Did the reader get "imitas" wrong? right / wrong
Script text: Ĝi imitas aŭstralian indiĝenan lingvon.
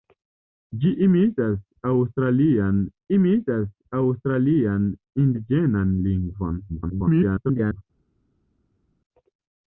right